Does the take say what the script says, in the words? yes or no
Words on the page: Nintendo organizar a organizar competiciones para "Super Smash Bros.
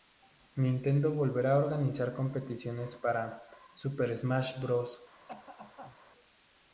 no